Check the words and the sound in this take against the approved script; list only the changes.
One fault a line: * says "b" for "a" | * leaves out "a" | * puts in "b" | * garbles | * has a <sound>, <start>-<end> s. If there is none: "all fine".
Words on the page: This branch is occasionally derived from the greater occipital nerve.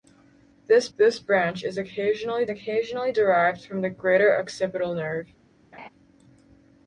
* puts in "this"
* puts in "occasionally"
* has a laugh, 5.7-5.9 s